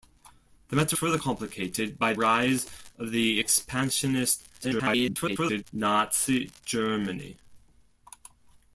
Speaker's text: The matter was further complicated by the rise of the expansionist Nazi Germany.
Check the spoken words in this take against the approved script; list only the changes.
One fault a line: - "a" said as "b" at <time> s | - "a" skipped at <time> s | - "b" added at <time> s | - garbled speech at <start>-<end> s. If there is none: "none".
- "was" skipped at 1.0 s
- "the" skipped at 2.1 s
- garbled speech at 4.6-5.6 s